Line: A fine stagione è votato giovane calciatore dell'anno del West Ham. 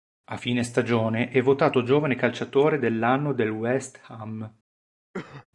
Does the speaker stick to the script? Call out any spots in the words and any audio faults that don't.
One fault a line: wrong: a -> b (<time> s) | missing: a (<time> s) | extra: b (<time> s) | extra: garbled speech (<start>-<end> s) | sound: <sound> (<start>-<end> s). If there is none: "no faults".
sound: cough (5.1-5.5 s)